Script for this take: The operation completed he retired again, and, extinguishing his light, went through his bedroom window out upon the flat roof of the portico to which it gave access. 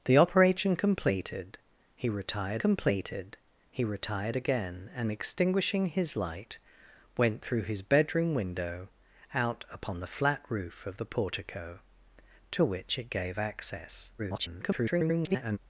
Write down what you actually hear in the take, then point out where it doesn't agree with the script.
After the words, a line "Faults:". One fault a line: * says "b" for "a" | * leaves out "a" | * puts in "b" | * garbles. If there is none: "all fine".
The operation completed he retired completed he retired again, and, extinguishing his light, went through his bedroom window out upon the flat roof of the portico to which it gave access. [garbled]
Faults:
* puts in "completed he retired"
* garbles